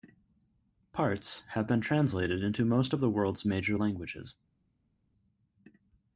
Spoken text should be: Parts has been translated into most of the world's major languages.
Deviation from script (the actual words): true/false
true